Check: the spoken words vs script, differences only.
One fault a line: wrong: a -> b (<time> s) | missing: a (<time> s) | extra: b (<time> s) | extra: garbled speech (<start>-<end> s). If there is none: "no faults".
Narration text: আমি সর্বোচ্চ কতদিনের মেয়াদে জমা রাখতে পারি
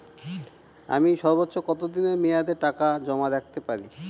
extra: টাকা (2.6 s)